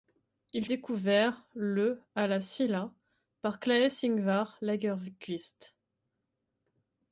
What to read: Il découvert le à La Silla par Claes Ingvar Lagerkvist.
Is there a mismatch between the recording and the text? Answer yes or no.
no